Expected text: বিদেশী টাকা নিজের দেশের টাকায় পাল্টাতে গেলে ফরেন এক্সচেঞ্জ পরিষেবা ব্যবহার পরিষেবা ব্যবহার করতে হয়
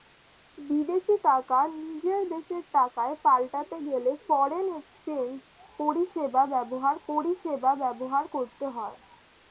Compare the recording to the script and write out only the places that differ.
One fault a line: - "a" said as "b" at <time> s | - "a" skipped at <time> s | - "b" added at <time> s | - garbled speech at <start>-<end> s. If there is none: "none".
none